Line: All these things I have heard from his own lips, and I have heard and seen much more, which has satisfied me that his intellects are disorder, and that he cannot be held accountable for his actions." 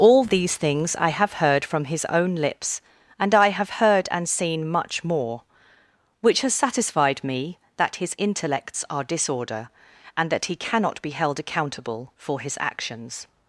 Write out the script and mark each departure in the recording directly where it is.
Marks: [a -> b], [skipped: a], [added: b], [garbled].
All these things I have heard from his own lips, and I have heard and seen much more, which has satisfied me that his intellects are disorder, and that he cannot be held accountable for his actions."